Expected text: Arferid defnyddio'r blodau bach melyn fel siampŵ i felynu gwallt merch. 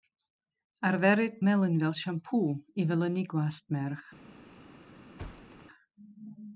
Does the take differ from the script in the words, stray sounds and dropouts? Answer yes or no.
yes